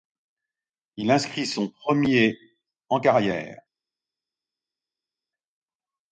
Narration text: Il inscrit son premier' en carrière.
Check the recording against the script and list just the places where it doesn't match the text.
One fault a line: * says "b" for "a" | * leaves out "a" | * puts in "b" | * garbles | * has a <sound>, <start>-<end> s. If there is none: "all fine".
all fine